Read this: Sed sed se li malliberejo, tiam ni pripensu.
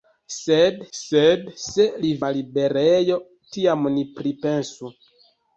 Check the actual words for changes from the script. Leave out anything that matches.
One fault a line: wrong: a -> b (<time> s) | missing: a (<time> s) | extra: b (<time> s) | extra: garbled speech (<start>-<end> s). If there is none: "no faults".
no faults